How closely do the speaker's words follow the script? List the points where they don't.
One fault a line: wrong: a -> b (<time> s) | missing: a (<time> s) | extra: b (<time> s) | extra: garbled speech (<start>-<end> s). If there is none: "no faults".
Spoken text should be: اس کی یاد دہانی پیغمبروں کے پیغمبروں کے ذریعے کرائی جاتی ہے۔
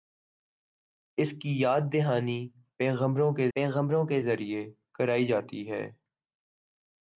no faults